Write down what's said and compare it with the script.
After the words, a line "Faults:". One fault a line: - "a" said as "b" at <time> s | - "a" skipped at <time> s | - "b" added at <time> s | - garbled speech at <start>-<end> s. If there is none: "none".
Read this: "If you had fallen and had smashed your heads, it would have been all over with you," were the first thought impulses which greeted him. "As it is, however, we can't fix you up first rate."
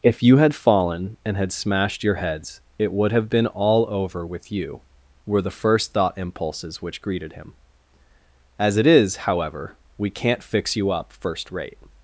"If you had fallen and had smashed your heads, it would have been all over with you," were the first thought impulses which greeted him. "As it is, however, we can't fix you up first rate."
Faults:
none